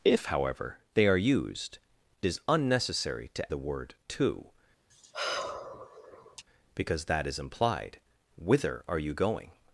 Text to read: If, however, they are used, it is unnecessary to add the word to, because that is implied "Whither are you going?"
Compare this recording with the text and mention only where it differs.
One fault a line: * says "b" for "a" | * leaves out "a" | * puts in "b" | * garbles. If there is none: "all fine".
* leaves out "it"
* leaves out "add"